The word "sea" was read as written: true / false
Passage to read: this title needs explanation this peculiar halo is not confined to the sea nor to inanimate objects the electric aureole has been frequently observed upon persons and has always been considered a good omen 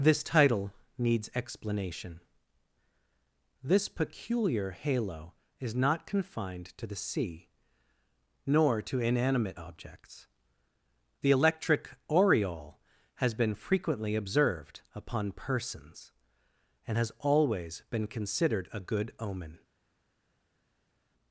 true